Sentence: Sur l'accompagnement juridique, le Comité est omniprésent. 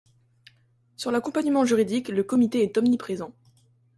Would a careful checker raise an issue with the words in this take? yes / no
no